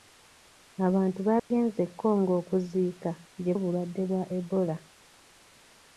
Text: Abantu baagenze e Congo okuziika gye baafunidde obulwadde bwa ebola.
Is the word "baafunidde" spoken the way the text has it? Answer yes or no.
no